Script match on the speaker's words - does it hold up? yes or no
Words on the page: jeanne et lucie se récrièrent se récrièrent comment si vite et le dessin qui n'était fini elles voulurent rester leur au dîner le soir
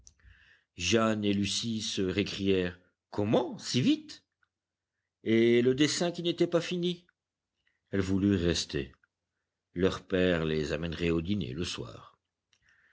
no